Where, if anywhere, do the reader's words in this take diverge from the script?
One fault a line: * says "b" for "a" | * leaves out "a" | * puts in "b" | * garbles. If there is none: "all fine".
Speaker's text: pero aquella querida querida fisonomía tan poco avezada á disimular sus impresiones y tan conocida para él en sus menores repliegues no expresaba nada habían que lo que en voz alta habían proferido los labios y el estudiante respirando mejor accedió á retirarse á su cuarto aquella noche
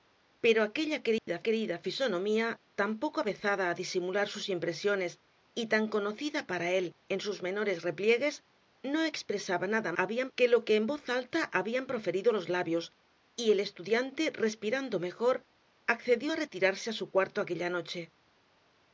all fine